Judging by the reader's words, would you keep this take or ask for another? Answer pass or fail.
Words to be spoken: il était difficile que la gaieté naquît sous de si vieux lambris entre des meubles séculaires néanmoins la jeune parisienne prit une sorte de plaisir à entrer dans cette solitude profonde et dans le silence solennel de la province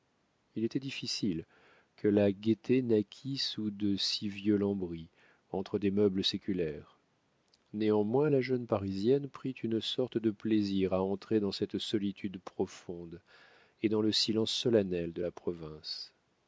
pass